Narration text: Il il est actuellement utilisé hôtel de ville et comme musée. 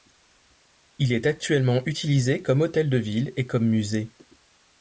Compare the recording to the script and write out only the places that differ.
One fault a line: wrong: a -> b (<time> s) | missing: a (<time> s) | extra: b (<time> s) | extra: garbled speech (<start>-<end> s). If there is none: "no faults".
missing: il (1.1 s)
extra: comme (2.4 s)